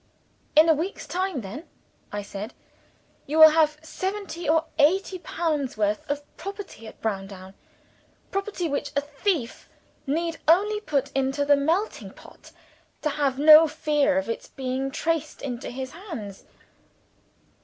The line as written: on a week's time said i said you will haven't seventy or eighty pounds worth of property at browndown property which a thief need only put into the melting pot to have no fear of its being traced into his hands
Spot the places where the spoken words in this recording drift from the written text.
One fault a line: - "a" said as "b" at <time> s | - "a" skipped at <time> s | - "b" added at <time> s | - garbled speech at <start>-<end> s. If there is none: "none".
- "on" said as "in" at 0.6 s
- "said" said as "then" at 1.4 s
- "haven't" said as "have" at 3.5 s